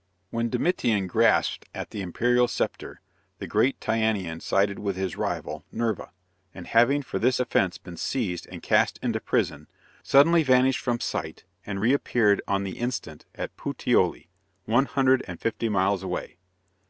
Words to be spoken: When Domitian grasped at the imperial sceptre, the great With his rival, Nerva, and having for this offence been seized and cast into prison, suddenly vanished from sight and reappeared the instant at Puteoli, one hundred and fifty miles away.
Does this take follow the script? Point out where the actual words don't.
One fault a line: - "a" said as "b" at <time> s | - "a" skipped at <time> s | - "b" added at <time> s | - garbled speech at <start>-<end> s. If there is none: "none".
- "Tyanean sided" added at 3.8 s
- "on" added at 12.5 s